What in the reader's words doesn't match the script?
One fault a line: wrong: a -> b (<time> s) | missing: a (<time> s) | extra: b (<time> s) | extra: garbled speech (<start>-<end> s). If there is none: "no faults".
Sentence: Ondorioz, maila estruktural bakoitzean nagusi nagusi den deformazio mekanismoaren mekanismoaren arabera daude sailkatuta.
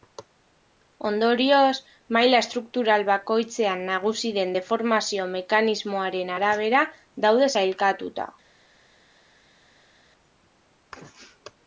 missing: nagusi (4.3 s)
missing: mekanismoaren (6.3 s)